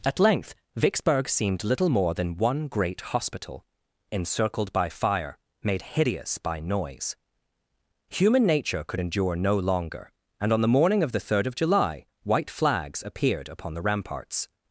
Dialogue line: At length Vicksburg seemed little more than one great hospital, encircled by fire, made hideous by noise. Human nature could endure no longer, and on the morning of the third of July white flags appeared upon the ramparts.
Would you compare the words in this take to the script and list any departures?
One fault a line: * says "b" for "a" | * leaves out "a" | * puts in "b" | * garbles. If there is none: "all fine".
all fine